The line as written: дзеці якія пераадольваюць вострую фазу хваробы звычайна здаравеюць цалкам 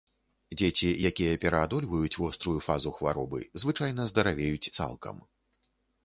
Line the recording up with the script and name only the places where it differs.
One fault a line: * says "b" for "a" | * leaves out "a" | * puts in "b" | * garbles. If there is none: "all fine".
all fine